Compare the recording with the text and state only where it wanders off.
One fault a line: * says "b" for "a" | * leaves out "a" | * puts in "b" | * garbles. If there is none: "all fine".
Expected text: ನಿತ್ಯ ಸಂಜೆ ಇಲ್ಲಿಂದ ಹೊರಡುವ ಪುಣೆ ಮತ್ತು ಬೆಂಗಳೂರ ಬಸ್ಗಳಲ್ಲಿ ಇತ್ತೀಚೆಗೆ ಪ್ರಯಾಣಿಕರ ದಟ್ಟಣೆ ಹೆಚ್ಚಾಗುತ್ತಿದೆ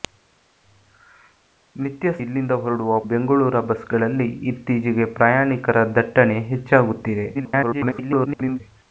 * leaves out "ಸಂಜೆ"
* leaves out "ಪುಣೆ ಮತ್ತು"
* garbles